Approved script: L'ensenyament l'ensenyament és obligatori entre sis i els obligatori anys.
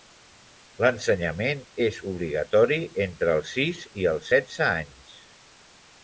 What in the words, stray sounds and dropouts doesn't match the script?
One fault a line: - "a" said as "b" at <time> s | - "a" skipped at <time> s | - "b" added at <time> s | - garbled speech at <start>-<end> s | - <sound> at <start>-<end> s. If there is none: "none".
- "l'ensenyament" skipped at 1.6 s
- "els" added at 3.4 s
- "obligatori" said as "setze" at 4.3 s